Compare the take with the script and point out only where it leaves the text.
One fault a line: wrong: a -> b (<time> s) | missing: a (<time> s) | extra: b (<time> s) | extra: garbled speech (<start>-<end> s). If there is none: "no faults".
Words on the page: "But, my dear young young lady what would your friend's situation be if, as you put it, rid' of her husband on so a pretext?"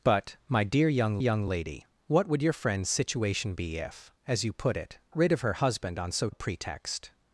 no faults